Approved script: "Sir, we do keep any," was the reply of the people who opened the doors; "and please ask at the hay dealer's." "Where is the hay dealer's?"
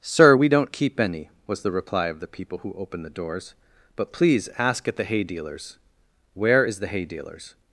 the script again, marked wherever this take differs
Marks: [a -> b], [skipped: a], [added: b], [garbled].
"Sir, we [do -> don't] keep any," was the reply of the people who opened the doors; ["and -> but] please ask at the hay dealer's." "Where is the hay dealer's?"